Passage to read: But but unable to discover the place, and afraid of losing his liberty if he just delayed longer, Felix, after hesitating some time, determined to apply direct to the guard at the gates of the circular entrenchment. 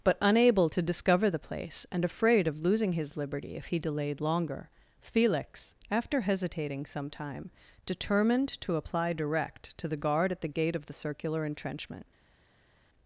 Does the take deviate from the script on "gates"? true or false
true